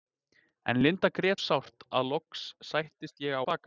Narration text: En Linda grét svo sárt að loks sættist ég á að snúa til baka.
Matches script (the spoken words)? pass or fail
fail